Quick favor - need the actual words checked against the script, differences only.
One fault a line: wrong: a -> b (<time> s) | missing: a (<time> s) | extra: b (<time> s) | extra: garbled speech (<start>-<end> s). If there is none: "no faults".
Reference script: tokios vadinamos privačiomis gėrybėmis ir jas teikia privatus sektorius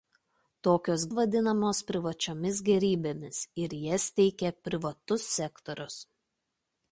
no faults